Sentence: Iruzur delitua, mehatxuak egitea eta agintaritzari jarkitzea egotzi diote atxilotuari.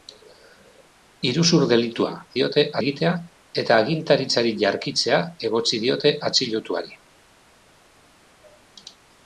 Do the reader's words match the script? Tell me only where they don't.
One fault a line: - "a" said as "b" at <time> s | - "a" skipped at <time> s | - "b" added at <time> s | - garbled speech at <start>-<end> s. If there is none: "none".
- "mehatxuak" said as "diote" at 2.4 s